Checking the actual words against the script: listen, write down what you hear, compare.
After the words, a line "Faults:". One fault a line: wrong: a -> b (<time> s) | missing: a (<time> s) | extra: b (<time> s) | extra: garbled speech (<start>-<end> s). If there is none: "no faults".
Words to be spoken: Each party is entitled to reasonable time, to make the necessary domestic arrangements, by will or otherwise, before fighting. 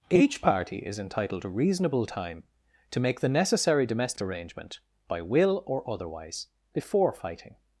Each party is entitled to reasonable time, to make the necessary domestic arrangement, by will or otherwise, before fighting.
Faults:
wrong: arrangements -> arrangement (4.2 s)